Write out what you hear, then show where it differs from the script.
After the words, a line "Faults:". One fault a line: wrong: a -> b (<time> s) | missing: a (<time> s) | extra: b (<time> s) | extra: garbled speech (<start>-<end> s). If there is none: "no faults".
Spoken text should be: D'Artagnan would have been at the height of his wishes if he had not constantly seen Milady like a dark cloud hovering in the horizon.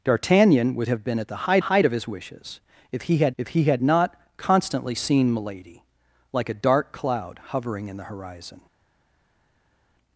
D'Artagnan would have been at the height height of his wishes if he had if he had not constantly seen Milady like a dark cloud hovering in the horizon.
Faults:
extra: height (1.6 s)
extra: if he had (3.4 s)